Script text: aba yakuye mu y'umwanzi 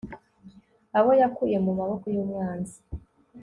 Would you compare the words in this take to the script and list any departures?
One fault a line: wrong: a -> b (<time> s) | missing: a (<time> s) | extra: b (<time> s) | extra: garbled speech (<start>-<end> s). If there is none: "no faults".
wrong: aba -> abo (1.0 s)
extra: maboko (1.8 s)